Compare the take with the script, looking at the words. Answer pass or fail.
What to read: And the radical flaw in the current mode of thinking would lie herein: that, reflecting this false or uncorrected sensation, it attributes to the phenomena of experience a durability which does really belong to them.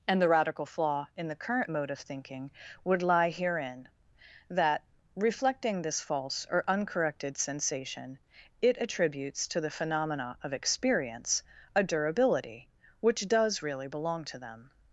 pass